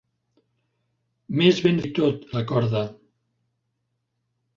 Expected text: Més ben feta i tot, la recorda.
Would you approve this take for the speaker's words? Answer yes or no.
no